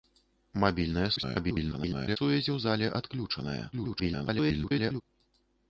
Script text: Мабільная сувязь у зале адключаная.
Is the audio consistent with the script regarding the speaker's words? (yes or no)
no